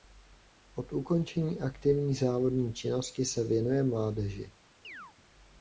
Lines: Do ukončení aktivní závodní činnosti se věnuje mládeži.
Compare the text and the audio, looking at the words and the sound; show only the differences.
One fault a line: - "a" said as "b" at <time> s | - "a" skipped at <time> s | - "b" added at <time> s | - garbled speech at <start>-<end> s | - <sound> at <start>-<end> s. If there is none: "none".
- "Do" said as "Od" at 0.8 s
- chirp at 4.8-5.1 s